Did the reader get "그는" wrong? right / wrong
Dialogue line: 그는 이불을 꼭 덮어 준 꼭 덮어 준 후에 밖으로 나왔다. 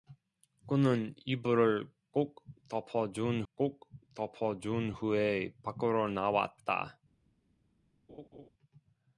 right